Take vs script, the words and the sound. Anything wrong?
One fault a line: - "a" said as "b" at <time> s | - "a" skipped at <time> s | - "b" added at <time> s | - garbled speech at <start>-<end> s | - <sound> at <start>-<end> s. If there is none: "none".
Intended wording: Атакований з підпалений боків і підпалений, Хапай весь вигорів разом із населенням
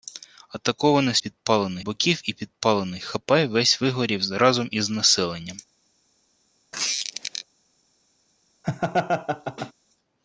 - squeak at 6.7-7.4 s
- laugh at 8.6-9.7 s